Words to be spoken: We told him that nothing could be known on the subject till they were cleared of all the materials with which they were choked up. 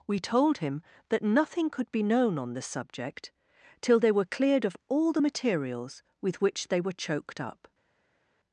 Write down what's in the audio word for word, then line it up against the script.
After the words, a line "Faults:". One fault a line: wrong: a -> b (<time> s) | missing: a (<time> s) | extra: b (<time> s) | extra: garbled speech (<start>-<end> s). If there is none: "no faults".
We told him that nothing could be known on the subject till they were cleared of all the materials with which they were choked up.
Faults:
no faults